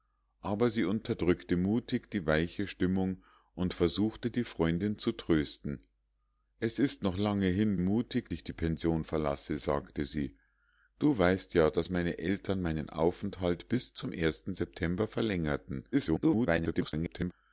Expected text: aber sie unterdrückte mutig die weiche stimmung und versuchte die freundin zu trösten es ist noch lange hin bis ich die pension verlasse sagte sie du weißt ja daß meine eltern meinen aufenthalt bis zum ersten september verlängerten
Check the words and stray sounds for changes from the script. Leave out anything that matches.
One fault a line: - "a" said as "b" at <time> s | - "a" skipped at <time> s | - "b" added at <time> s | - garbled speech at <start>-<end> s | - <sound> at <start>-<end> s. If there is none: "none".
- "bis" said as "mutig" at 7.8 s
- garbled speech at 15.9-17.3 s